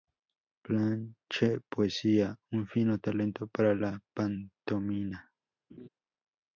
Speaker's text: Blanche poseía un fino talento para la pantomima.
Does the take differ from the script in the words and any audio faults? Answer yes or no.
yes